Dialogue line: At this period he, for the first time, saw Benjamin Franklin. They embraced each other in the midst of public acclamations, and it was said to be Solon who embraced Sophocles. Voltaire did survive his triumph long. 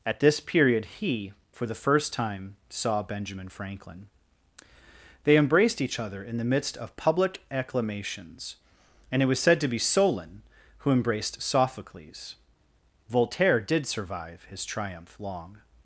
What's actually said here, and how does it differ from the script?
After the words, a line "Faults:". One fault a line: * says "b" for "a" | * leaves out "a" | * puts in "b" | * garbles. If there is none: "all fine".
At this period he, for the first time, saw Benjamin Franklin. They embraced each other in the midst of public acclamations, and it was said to be Solon who embraced Sophocles. Voltaire did survive his triumph long.
Faults:
all fine